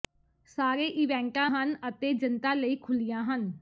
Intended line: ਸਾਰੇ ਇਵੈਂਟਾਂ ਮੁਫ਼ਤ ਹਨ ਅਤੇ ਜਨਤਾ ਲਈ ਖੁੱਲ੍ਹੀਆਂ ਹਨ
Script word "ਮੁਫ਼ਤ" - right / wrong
wrong